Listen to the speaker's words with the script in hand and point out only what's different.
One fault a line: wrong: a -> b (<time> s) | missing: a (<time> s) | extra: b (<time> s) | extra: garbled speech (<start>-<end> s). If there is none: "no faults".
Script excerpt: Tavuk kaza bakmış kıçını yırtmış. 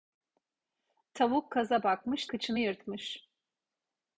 no faults